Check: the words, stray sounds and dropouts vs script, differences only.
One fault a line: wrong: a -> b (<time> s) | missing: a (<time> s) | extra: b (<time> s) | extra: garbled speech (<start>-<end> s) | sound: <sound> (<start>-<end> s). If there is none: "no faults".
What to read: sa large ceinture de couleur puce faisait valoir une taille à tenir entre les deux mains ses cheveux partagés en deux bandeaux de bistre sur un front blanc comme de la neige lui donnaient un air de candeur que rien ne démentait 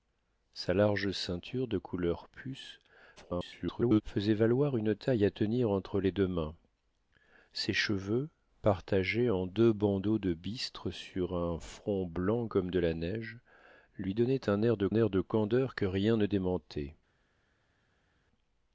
extra: garbled speech (3.2-4.0 s)
extra: air de (14.9 s)